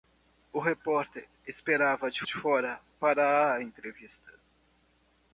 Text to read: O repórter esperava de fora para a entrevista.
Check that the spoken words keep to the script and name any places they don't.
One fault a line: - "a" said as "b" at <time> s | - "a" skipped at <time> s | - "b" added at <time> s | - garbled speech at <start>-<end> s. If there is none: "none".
- "de" added at 2.2 s